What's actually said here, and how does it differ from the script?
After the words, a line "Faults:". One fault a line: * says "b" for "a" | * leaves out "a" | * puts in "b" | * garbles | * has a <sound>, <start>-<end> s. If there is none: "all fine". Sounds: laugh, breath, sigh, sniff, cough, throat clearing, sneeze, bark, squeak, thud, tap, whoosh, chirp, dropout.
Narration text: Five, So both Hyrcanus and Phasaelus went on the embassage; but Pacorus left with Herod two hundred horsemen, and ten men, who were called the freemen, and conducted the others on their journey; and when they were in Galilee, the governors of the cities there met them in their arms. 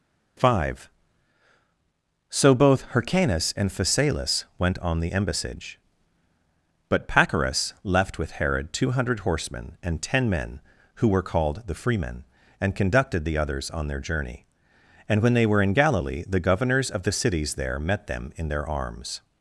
Five, So both Hyrcanus and Phasaelus went on the embassage; but Pacorus left with Herod two hundred horsemen, and ten men, who were called the freemen, and conducted the others on their journey; and when they were in Galilee, the governors of the cities there met them in their arms.
Faults:
all fine